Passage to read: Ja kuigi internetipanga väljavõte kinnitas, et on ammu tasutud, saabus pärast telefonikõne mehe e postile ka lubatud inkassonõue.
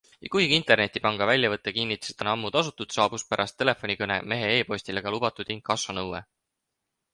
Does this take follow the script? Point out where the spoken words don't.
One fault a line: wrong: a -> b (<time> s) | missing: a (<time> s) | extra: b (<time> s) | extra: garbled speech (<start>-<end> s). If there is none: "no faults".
no faults